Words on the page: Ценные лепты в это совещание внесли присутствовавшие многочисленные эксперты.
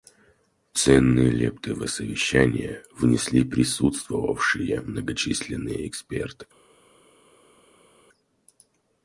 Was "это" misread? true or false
true